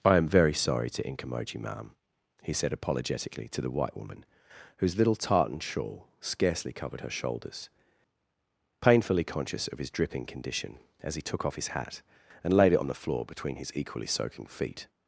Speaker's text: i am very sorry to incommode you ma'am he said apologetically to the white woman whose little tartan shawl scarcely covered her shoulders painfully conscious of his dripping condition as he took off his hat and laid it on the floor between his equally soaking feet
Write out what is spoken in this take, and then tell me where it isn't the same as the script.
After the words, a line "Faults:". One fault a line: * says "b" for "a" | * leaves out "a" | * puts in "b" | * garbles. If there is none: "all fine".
i am very sorry to incommode you ma'am he said apologetically to the white woman whose little tartan shawl scarcely covered her shoulders painfully conscious of his dripping condition as he took off his hat and laid it on the floor between his equally soaking feet
Faults:
all fine